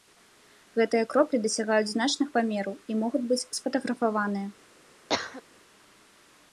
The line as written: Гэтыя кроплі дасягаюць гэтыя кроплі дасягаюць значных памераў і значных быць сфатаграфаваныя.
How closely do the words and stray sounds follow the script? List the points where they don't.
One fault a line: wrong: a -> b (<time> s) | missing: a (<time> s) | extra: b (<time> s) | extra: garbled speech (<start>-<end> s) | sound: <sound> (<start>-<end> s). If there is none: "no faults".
missing: гэтыя кроплі дасягаюць (1.9 s)
wrong: значных -> могуць (3.0 s)
sound: cough (5.1-5.4 s)